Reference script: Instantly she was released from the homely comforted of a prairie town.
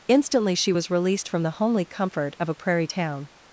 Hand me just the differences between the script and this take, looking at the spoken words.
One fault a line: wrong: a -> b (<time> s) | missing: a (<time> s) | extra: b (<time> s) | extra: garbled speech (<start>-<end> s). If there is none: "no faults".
wrong: comforted -> comfort (1.8 s)